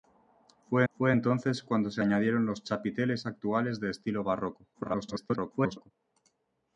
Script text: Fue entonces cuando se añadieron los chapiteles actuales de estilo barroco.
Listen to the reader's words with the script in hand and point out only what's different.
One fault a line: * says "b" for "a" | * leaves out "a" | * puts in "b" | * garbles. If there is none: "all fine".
* puts in "fue"
* garbles